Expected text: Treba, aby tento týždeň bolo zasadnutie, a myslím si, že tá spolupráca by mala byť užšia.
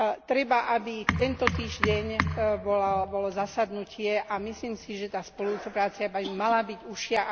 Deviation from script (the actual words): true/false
false